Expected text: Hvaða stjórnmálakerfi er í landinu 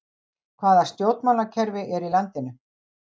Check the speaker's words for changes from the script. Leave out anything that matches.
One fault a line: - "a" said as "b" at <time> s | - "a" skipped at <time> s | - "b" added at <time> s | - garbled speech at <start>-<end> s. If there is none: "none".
none